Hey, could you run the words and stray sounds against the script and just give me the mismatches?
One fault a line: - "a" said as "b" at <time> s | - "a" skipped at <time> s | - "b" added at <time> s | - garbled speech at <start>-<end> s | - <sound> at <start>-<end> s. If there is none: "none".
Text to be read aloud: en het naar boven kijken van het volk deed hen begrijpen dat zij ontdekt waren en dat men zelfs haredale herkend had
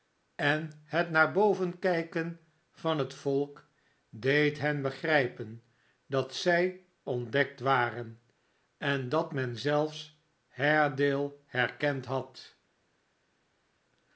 none